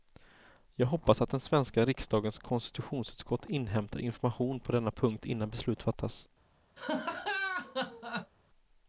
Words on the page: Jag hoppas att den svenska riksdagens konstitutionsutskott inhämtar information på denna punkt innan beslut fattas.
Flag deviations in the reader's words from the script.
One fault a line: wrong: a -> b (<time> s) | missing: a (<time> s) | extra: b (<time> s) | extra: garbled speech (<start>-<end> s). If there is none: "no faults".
no faults